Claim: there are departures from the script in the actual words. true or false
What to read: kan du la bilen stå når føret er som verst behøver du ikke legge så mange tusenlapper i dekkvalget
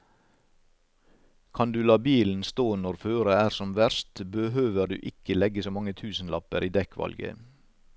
false